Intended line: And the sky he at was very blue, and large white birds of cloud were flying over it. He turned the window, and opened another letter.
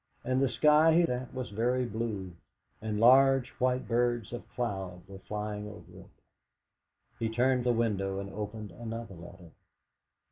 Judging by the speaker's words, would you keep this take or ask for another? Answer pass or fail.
pass